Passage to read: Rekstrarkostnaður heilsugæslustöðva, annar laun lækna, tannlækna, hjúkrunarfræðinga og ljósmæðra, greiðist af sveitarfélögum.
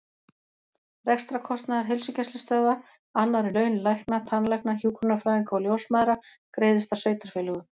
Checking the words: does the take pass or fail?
pass